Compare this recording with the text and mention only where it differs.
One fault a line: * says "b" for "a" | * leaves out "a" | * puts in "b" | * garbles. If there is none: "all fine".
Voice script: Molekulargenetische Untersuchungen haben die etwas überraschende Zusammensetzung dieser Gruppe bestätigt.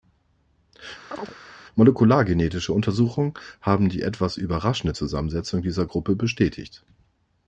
all fine